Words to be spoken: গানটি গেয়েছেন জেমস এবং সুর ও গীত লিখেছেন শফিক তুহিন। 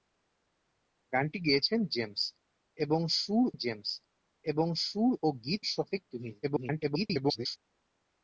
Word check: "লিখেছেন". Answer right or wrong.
wrong